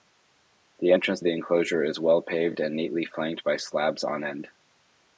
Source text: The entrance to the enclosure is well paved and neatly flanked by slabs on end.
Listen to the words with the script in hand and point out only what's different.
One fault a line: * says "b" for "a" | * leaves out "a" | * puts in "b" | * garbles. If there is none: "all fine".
* leaves out "to"